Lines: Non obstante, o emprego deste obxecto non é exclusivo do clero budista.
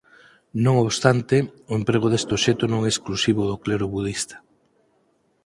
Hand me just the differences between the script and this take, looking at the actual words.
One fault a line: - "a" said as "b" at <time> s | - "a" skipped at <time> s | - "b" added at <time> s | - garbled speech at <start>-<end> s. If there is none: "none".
none